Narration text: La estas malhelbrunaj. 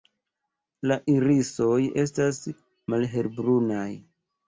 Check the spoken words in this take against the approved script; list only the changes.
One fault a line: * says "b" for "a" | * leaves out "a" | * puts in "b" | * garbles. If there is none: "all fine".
* puts in "irisoj"